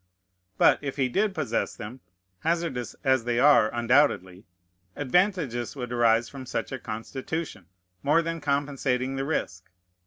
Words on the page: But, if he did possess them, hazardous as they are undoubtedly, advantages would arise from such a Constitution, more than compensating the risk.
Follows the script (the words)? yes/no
yes